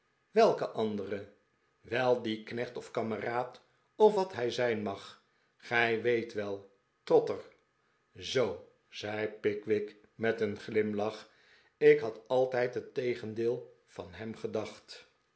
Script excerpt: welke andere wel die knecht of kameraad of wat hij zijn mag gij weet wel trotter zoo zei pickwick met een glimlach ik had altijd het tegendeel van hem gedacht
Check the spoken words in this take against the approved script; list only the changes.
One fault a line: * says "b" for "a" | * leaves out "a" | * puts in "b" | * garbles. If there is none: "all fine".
all fine